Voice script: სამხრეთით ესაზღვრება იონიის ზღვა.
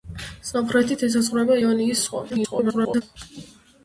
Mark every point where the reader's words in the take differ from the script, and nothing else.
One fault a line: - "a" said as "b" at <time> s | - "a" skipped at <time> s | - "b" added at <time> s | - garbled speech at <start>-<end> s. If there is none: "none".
- garbled speech at 2.3-3.0 s